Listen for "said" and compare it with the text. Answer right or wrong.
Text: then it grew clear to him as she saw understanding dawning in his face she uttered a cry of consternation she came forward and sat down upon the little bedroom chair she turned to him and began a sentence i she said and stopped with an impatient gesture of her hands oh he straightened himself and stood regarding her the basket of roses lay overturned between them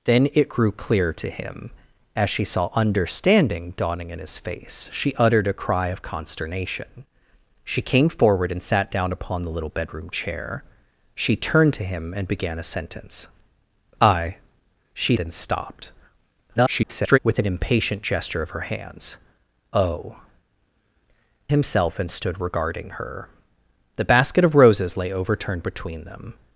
wrong